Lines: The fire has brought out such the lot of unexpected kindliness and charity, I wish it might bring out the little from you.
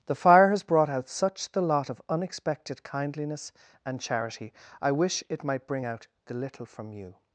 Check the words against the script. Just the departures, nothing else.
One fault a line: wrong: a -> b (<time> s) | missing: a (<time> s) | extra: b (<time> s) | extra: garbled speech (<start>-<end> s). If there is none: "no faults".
no faults